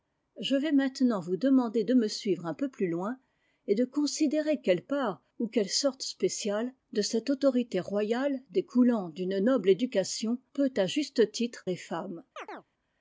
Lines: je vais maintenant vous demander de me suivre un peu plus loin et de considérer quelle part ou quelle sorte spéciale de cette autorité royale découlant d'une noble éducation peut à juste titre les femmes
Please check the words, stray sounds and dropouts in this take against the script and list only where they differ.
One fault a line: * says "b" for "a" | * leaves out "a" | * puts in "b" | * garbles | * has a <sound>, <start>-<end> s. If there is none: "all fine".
* has a chirp, 12.4-12.7 s